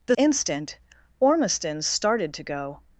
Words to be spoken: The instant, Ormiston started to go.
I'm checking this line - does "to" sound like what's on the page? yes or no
yes